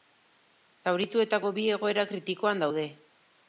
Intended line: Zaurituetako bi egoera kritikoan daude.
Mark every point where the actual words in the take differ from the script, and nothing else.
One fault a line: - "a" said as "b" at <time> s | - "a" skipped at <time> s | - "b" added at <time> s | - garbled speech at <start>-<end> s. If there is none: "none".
none